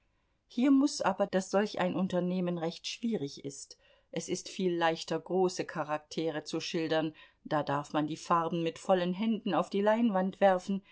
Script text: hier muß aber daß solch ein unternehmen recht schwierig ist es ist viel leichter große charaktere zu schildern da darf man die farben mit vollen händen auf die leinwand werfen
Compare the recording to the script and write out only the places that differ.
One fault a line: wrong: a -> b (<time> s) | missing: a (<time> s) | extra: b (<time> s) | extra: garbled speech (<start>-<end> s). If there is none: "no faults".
no faults